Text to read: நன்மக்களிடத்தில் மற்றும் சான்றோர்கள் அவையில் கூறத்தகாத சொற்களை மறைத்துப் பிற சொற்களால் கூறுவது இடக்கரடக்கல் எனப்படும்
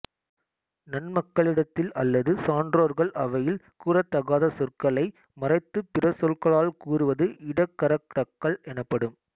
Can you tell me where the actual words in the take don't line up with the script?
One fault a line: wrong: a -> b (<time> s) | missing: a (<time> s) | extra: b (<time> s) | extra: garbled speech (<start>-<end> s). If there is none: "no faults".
wrong: மற்றும் -> அல்லது (1.9 s)